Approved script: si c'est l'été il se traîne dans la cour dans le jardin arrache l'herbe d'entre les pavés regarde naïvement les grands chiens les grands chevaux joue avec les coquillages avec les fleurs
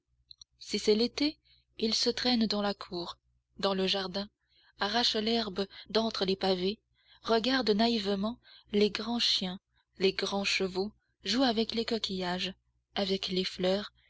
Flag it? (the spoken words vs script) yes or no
no